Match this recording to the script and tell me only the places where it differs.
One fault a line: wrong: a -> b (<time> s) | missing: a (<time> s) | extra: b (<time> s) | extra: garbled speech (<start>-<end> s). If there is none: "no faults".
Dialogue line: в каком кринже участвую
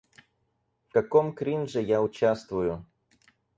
extra: я (1.8 s)